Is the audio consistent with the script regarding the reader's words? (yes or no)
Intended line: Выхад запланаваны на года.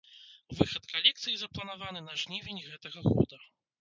no